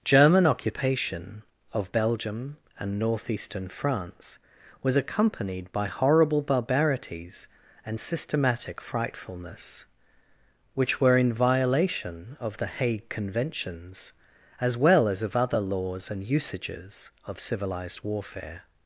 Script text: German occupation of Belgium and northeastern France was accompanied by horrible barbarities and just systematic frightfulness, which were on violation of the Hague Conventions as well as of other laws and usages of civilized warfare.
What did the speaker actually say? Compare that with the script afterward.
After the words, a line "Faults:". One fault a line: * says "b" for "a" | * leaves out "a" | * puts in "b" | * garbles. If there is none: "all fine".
German occupation of Belgium and northeastern France was accompanied by horrible barbarities and systematic frightfulness, which were in violation of the Hague Conventions as well as of other laws and usages of civilized warfare.
Faults:
* leaves out "just"
* says "in" for "on"